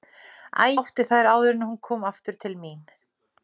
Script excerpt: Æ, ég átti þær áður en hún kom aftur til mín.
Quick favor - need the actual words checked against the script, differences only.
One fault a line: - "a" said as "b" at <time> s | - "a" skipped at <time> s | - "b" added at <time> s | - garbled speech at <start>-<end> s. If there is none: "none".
- "ég" skipped at 0.7 s